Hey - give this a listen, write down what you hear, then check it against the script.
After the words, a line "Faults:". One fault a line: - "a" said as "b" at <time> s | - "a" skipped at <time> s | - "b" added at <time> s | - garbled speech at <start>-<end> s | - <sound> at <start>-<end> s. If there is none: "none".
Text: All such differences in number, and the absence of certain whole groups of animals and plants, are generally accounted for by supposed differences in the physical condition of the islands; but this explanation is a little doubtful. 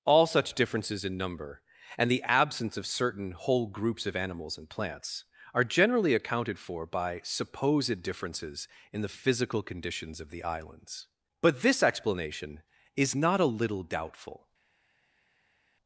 All such differences in number, and the absence of certain whole groups of animals and plants, are generally accounted for by supposed differences in the physical conditions of the islands; but this explanation is not a little doubtful.
Faults:
- "condition" said as "conditions" at 9.6 s
- "not" added at 13.1 s